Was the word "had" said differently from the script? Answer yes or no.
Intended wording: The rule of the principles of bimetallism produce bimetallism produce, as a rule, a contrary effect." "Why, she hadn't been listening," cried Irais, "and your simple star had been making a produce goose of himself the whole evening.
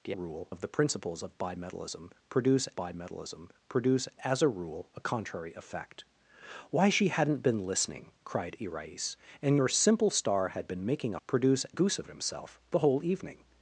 no